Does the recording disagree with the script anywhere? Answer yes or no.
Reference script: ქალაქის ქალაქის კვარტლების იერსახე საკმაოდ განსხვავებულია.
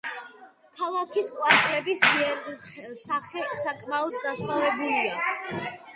yes